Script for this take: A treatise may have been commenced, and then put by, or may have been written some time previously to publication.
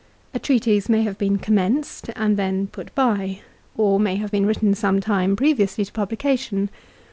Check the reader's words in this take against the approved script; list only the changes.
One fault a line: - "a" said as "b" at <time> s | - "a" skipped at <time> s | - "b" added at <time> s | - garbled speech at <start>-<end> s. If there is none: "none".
none